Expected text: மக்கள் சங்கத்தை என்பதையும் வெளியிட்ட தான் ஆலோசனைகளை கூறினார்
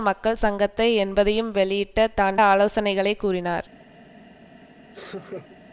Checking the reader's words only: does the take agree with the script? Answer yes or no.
yes